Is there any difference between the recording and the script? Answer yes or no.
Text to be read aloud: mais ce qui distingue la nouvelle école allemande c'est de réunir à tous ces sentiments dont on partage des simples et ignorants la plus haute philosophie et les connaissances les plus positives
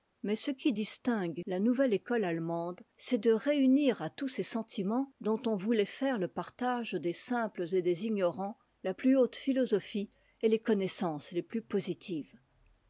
yes